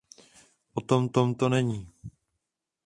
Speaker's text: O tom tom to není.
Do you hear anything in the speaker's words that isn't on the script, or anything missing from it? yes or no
no